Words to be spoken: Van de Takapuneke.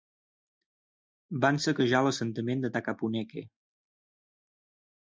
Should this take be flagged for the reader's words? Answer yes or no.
yes